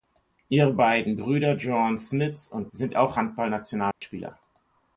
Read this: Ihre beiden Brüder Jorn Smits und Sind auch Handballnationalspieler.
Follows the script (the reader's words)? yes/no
yes